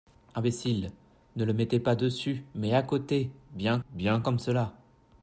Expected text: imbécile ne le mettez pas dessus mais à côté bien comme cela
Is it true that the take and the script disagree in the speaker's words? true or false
true